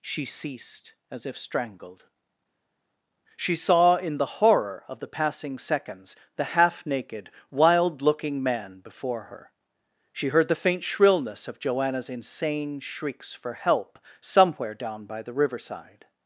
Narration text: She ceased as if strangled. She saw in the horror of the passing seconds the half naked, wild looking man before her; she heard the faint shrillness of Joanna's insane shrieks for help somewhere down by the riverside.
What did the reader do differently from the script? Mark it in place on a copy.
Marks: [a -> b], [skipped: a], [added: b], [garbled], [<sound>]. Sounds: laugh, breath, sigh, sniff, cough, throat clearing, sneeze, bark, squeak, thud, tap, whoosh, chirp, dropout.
She ceased as if strangled. She saw in the horror of the passing seconds the half naked, wild looking man before her; she heard the faint shrillness of Joanna's insane shrieks for help somewhere down by the riverside.